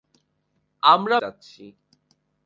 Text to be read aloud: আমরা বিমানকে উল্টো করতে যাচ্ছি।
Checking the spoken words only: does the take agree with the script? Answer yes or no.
no